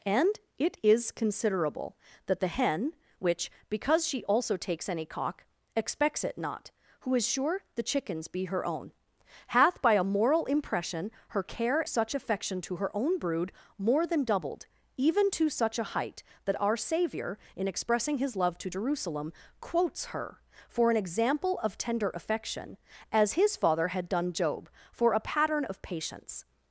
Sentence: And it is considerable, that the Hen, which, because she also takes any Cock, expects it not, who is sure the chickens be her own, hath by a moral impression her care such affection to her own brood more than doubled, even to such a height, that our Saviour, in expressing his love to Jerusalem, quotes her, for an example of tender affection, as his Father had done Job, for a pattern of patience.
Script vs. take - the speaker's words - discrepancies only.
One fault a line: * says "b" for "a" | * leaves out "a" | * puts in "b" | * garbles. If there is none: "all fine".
all fine